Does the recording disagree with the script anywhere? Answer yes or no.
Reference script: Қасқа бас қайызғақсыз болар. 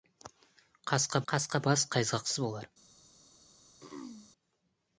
yes